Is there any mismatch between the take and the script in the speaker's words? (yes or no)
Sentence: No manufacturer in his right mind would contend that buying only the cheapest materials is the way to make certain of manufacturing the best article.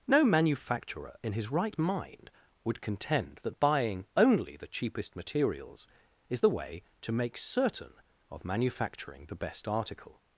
no